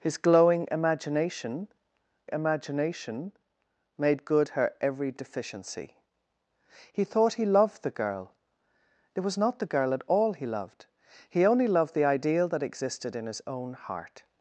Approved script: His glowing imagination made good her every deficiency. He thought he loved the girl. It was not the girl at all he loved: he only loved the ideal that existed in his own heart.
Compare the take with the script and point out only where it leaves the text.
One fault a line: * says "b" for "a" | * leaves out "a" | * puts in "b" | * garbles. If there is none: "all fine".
* puts in "imagination"